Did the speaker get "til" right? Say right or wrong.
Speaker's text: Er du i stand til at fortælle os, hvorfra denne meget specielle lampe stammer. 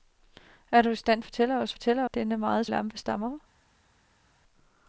wrong